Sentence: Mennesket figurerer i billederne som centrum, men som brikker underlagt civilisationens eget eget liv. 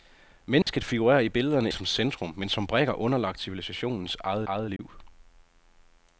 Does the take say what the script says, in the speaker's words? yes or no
yes